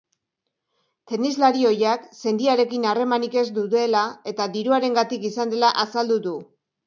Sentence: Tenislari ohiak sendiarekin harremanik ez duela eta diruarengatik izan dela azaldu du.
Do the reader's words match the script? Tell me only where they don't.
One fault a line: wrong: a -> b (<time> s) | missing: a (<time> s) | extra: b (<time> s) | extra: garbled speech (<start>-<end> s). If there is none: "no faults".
no faults